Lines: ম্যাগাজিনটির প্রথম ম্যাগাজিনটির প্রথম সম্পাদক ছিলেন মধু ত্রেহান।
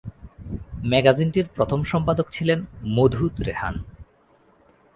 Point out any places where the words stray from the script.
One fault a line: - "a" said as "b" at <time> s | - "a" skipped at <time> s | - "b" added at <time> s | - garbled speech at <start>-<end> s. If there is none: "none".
- "ম্যাগাজিনটির প্রথম" skipped at 1.8 s